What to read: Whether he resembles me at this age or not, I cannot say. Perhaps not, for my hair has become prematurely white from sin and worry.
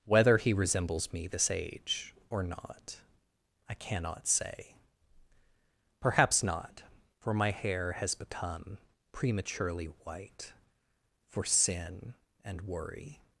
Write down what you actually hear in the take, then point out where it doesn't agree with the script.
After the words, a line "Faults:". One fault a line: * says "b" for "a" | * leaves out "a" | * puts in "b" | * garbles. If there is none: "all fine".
Whether he resembles me this age or not, I cannot say. Perhaps not, for my hair has become prematurely white for sin and worry.
Faults:
* leaves out "at"
* says "for" for "from"